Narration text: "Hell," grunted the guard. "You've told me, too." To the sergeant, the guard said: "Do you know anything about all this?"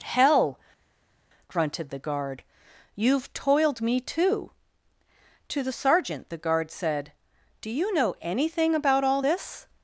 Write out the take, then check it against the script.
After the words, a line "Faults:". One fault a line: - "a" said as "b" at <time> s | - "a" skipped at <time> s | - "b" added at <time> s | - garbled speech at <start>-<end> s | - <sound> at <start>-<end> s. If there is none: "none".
"Hell," grunted the guard. "You've toiled me, too." To the sergeant, the guard said: "Do you know anything about all this?"
Faults:
- "told" said as "toiled" at 3.3 s